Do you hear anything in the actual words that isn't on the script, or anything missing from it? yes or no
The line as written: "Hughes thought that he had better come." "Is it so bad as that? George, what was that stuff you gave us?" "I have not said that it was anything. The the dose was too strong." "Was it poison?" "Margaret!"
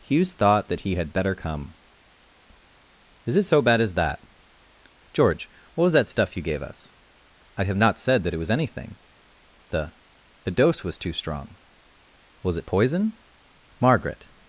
no